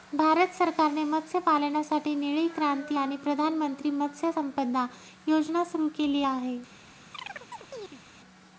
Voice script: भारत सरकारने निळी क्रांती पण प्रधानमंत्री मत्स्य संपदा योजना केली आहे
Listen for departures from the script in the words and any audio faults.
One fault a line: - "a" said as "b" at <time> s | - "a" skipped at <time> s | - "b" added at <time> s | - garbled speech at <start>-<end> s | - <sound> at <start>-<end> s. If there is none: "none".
- "मत्स्यपालनासाठी" added at 1.0 s
- "पण" said as "आणि" at 2.9 s
- "सुरू" added at 5.6 s
- chirp at 7.1-8.0 s